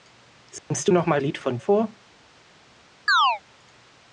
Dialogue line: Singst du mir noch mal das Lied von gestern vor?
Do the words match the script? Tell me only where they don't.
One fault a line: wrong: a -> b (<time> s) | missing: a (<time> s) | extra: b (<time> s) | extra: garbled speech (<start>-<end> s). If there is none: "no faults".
missing: mir (0.9 s)
missing: das (1.2 s)
missing: gestern (1.6 s)